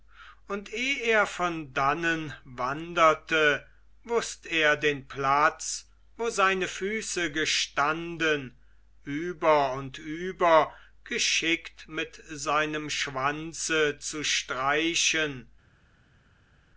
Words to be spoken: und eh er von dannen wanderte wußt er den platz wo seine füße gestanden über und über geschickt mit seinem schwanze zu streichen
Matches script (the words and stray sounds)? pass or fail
pass